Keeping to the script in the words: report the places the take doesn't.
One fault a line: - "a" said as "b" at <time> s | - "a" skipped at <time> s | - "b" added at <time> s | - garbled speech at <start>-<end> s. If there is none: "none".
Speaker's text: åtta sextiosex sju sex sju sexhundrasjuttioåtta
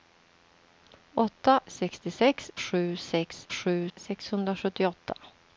none